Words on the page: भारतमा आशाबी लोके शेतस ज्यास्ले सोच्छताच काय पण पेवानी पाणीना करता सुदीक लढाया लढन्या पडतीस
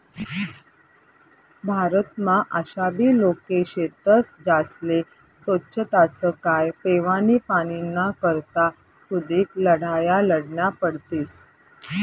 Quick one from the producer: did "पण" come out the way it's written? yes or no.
no